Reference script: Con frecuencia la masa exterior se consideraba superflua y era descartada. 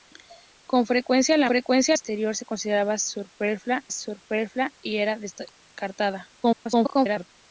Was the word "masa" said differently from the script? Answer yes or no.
yes